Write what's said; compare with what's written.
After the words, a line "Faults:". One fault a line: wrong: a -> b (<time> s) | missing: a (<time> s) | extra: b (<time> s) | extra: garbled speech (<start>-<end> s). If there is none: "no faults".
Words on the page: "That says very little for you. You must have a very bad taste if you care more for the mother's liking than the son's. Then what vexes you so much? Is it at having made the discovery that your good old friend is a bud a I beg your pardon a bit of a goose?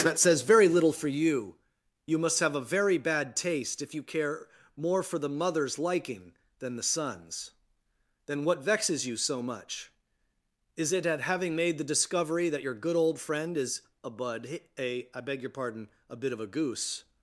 "That says very little for you. You must have a very bad taste if you care more for the mother's liking than the son's. Then what vexes you so much? Is it at having made the discovery that your good old friend is a bud a I beg your pardon a bit of a goose?
Faults:
no faults